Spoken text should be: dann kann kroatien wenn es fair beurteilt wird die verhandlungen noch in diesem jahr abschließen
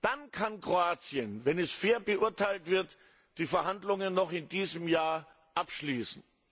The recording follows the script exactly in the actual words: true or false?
true